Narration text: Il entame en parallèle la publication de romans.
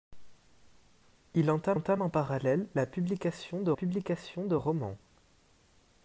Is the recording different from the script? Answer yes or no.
yes